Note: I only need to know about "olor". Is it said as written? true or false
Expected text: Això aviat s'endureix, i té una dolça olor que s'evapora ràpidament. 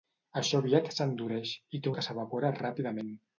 false